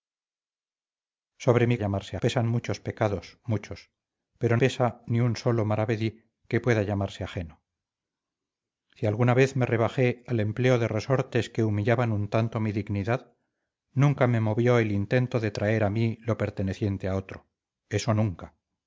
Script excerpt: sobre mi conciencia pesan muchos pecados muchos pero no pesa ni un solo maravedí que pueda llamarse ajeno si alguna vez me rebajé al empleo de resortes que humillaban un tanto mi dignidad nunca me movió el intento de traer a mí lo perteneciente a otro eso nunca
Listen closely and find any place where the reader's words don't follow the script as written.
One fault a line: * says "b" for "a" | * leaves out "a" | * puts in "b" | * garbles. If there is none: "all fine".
* says "llamarse" for "conciencia"
* leaves out "no"